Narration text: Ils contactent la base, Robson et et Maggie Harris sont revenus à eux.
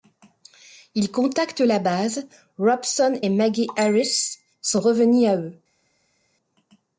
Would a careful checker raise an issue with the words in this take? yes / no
yes